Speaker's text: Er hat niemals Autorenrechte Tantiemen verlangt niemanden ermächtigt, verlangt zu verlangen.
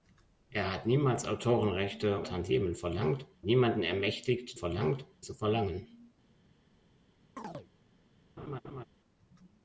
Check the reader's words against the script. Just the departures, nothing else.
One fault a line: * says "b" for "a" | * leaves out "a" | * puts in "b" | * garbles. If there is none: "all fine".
all fine